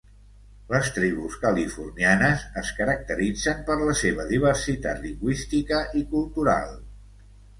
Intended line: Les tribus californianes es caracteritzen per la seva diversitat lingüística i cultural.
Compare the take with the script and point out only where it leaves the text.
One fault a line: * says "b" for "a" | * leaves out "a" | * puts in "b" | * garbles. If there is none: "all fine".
all fine